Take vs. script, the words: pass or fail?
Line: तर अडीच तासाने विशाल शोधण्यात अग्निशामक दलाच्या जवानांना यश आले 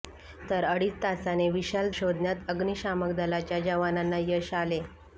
pass